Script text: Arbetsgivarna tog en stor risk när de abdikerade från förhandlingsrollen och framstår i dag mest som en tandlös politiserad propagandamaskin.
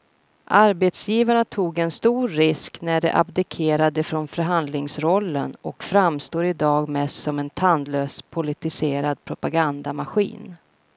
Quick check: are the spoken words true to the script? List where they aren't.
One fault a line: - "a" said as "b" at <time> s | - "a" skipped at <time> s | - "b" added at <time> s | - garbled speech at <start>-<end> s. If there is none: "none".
none